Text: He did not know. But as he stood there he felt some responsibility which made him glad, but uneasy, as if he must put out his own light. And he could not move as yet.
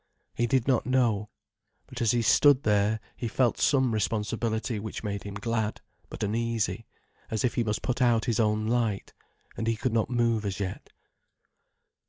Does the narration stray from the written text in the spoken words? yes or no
no